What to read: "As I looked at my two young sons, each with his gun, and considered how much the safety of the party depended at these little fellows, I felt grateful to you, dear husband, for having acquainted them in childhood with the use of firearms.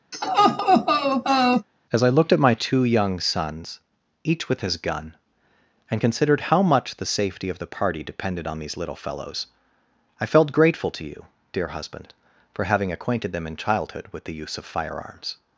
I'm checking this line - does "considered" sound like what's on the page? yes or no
yes